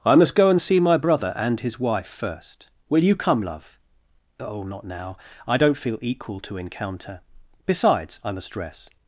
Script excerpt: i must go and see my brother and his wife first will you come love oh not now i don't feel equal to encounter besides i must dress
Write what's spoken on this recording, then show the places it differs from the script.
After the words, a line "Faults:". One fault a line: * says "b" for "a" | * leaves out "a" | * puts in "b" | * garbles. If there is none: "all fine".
i must go and see my brother and his wife first will you come love oh not now i don't feel equal to encounter besides i must dress
Faults:
all fine